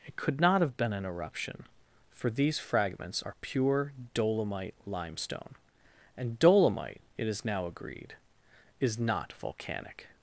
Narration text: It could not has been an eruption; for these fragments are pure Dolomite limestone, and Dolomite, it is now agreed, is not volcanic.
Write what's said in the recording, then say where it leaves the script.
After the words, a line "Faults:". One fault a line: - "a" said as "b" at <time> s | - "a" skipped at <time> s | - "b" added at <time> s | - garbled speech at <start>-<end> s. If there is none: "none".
It could not have been an eruption; for these fragments are pure Dolomite limestone, and Dolomite, it is now agreed, is not volcanic.
Faults:
- "has" said as "have" at 0.6 s